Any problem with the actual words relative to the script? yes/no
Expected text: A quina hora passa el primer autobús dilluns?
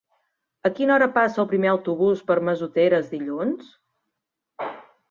yes